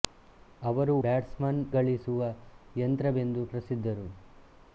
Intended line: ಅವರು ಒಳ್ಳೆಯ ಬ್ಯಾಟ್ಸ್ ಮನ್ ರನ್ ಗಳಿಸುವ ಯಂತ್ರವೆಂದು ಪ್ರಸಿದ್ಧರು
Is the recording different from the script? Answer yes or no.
yes